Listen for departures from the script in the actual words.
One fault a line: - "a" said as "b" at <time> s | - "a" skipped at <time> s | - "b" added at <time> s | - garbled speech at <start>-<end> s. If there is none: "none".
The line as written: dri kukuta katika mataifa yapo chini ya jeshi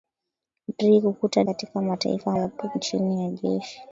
none